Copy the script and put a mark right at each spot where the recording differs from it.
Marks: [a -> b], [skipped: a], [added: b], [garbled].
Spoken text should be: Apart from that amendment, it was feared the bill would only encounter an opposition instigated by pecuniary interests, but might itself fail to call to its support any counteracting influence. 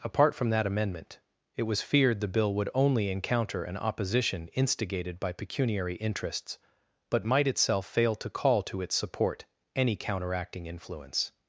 Apart from that amendment, it was feared the bill would only encounter an opposition instigated by pecuniary interests, but might itself fail to call to its support any counteracting influence.